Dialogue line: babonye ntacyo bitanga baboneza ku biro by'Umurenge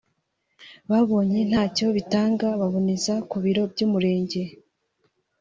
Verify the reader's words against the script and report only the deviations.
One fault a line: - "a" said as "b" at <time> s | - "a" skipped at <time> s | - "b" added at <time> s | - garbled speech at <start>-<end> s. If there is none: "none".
none